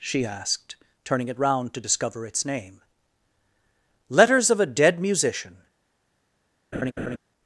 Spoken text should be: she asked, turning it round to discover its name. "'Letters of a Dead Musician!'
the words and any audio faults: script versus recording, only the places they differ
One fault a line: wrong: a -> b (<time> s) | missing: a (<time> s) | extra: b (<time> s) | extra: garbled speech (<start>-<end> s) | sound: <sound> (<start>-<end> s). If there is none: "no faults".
sound: laugh (6.7-7.2 s)